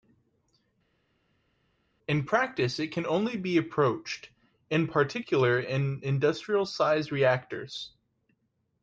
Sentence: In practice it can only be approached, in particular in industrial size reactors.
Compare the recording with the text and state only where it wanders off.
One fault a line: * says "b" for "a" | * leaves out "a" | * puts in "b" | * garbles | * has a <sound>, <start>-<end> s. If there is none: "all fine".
all fine